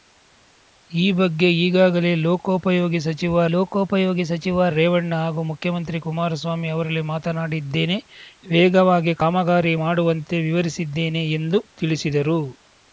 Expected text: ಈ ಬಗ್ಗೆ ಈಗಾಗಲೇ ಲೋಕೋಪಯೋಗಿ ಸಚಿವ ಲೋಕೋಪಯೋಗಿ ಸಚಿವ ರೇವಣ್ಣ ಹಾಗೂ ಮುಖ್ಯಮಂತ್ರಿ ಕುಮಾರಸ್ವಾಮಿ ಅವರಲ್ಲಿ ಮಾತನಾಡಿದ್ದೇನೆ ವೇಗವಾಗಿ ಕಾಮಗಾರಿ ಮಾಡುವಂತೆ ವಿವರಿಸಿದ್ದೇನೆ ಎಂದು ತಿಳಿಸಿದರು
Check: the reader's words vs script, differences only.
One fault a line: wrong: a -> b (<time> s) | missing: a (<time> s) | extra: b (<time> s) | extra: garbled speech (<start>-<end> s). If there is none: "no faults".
no faults